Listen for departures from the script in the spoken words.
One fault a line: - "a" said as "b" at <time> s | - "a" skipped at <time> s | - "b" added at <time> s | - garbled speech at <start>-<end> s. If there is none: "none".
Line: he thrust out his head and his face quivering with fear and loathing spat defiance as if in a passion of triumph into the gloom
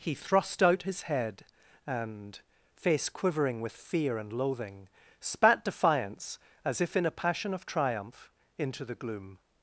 - "his" skipped at 2.4 s